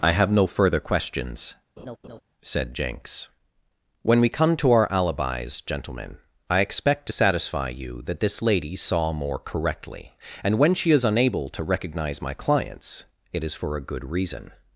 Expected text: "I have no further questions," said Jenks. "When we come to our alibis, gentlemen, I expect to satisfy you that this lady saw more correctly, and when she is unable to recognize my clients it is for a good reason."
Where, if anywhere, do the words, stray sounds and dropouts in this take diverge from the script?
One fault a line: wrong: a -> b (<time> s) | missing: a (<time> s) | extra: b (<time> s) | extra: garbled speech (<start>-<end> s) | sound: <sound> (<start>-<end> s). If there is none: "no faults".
sound: laugh (1.8-2.2 s)